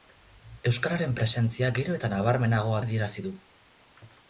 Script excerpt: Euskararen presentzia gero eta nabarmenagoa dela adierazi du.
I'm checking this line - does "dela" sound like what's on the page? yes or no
no